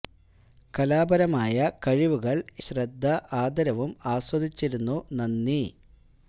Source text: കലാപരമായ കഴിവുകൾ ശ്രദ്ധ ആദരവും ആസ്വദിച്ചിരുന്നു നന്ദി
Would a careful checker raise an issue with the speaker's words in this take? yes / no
no